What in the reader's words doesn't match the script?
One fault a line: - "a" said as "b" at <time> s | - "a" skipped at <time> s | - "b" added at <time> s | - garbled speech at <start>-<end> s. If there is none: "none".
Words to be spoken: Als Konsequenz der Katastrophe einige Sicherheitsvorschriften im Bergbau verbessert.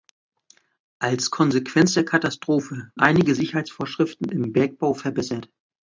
none